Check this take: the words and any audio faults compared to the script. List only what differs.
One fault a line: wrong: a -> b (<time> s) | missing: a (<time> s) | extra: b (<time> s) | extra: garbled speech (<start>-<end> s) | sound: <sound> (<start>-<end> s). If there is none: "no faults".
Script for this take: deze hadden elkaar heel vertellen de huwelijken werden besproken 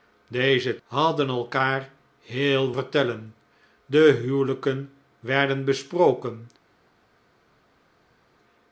no faults